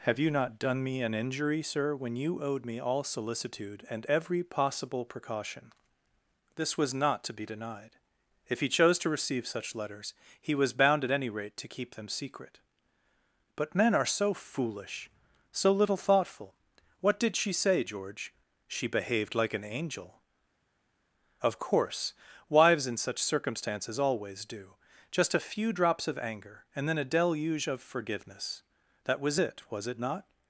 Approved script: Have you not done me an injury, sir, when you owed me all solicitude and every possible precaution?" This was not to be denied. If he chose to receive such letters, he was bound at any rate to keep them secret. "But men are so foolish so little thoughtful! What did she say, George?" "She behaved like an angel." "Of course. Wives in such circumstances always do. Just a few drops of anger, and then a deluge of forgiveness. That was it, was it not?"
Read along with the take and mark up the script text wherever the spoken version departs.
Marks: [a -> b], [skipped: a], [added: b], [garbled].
Have you not done me an injury, sir, when you owed me all solicitude and every possible precaution?" This was not to be denied. If he chose to receive such letters, he was bound at any rate to keep them secret. "But men are so foolish so little thoughtful! What did she say, George?" "She behaved like an angel." "Of course. Wives in such circumstances always do. Just a few drops of anger, and then a deluge of forgiveness. That was it, was it not?"